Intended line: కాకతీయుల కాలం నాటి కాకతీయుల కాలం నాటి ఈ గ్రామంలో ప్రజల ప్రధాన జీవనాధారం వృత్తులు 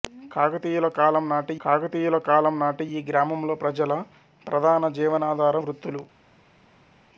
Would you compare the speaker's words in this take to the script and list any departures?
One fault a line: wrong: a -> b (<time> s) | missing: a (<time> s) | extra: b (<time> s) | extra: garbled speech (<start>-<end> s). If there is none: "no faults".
no faults